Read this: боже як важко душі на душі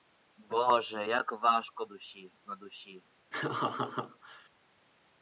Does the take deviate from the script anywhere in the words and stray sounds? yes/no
yes